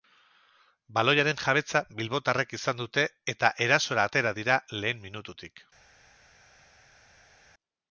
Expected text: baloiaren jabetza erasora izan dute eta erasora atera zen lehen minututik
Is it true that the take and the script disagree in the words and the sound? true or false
true